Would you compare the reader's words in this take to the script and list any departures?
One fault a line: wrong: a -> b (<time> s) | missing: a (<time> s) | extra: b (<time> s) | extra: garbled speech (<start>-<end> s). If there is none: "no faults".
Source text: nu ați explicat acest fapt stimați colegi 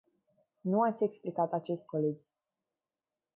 missing: fapt stimați (1.9 s)